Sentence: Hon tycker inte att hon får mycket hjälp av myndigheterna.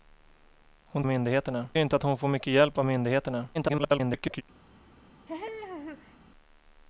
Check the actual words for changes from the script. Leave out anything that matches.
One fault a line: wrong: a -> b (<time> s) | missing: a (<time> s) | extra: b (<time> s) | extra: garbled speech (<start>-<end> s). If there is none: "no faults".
wrong: tycker -> myndigheterna (1.1 s)
extra: garbled speech (3.5-4.4 s)